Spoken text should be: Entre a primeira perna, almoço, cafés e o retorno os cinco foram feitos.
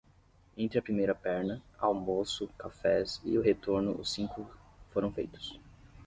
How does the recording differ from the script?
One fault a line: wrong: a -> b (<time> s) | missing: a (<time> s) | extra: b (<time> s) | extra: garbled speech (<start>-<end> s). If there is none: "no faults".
no faults